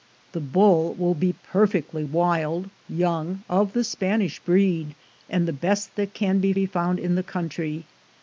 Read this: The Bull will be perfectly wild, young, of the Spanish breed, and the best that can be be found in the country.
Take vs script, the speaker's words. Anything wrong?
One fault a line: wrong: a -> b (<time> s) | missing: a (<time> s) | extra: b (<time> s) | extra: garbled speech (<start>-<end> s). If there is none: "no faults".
no faults